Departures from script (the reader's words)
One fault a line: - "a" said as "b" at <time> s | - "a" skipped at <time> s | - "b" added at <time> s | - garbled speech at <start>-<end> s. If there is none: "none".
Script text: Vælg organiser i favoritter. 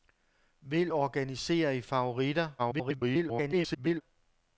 - garbled speech at 2.6-4.0 s